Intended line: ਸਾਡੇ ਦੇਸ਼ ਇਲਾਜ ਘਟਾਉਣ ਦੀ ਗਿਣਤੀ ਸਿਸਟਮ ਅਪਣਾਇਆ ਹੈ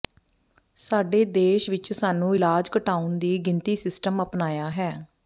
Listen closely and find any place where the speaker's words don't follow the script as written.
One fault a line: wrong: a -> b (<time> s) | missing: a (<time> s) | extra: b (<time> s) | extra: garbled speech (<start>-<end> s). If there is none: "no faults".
extra: ਵਿਚ ਸਾਨੂੰ (1.7 s)